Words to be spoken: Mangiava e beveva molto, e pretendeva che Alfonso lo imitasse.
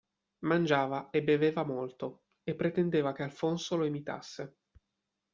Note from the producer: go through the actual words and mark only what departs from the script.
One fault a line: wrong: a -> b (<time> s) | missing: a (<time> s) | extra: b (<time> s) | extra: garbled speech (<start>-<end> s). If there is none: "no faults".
no faults